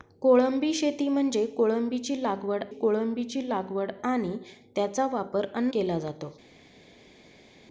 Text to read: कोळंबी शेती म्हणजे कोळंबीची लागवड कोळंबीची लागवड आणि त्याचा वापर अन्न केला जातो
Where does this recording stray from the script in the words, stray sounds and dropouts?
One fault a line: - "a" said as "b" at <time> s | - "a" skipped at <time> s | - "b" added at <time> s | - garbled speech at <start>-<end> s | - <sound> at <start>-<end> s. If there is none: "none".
none